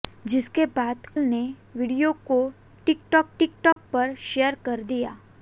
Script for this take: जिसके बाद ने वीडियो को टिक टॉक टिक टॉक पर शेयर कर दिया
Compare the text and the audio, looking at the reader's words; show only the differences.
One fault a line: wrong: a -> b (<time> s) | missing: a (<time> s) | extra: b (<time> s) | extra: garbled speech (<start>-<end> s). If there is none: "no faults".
no faults